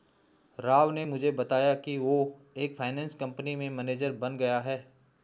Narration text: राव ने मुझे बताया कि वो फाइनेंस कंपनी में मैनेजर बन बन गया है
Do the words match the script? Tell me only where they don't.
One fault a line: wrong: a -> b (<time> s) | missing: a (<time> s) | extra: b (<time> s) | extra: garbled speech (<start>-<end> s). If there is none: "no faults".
extra: एक (2.6 s)
missing: बन (4.4 s)